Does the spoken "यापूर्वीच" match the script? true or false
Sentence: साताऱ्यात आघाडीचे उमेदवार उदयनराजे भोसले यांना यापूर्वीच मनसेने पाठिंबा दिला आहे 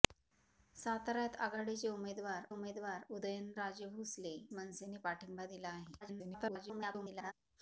false